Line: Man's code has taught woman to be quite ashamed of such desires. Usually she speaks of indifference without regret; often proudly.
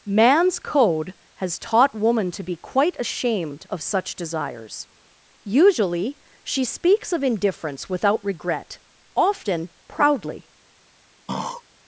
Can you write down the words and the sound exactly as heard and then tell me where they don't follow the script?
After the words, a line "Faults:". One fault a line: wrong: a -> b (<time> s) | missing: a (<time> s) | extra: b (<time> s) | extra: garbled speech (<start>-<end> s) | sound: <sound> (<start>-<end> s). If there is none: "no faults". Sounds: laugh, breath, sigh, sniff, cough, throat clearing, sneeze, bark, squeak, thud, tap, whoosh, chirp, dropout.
Man's code has taught woman to be quite ashamed of such desires. Usually she speaks of indifference without regret; often proudly.
Faults:
sound: throat clearing (11.3-11.6 s)